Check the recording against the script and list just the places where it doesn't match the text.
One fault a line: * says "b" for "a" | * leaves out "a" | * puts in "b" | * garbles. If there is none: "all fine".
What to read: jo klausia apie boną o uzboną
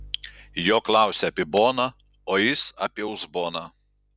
* puts in "jis apie"